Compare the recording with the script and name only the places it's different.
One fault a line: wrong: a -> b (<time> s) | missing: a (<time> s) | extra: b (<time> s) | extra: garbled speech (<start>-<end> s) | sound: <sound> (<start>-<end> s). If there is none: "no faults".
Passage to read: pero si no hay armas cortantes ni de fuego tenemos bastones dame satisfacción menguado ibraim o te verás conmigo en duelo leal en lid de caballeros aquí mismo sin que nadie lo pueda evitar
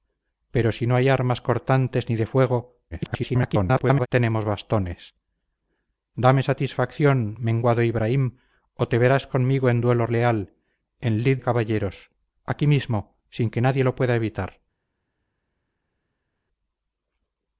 extra: garbled speech (2.9-4.1 s)
missing: de (11.4 s)